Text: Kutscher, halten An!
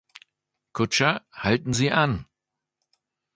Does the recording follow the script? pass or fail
fail